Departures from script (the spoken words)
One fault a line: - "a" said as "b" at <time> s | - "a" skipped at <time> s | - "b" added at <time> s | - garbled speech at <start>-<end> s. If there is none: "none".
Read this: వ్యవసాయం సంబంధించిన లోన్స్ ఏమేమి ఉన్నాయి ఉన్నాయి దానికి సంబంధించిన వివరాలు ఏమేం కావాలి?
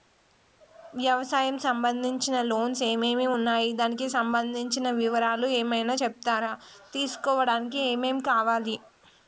- "ఉన్నాయి" skipped at 3.7 s
- "ఏమైనా చెప్తారా తీసుకోవడానికి" added at 5.6 s